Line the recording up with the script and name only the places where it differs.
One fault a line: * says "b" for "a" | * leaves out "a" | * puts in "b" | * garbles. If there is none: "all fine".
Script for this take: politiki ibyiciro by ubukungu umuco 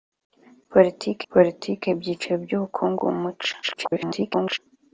* puts in "politiki"
* garbles